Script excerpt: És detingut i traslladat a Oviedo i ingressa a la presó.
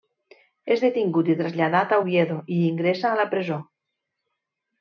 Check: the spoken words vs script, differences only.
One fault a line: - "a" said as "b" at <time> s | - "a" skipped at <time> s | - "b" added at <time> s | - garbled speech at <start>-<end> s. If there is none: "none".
none